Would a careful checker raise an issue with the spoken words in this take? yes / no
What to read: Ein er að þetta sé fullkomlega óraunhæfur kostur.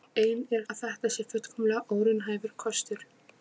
no